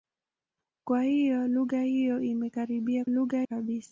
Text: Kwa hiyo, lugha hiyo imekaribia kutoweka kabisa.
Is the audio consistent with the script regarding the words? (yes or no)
no